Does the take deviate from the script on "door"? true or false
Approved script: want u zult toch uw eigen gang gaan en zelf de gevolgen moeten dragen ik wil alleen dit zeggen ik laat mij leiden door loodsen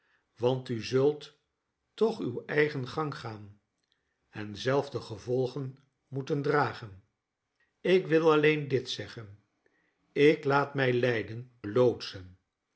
true